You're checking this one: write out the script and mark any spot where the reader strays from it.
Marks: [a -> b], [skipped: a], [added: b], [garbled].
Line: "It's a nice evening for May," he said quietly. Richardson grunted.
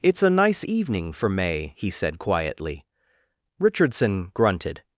"It's a nice evening for May," he said quietly. Richardson grunted.